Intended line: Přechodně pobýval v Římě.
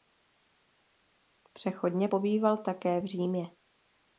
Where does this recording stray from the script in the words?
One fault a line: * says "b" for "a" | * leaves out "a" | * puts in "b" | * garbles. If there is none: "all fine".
* puts in "také"